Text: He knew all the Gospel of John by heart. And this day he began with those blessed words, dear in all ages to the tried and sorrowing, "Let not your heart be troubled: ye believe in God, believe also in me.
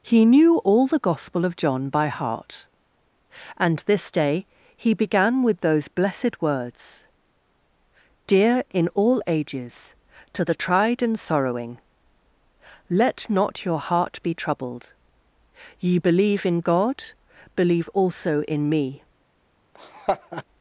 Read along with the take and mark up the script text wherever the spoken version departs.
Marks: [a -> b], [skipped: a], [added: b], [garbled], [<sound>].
He knew all the Gospel of John by heart. And this day he began with those blessed words, dear in all ages to the tried and sorrowing, "Let not your heart be troubled: ye believe in God, believe also in me. [laugh]